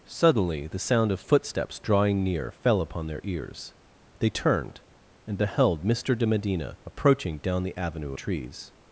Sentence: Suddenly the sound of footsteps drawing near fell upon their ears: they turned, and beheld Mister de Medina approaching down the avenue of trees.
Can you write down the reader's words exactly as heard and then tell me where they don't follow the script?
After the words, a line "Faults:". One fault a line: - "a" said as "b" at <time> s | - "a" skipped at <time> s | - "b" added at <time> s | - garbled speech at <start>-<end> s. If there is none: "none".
Suddenly the sound of footsteps drawing near fell upon their ears: they turned, and beheld Mister de Medina approaching down the avenue trees.
Faults:
- "of" skipped at 8.1 s